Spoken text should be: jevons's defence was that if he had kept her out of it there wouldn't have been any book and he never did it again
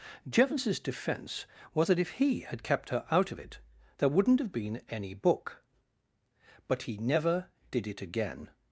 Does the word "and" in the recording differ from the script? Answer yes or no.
yes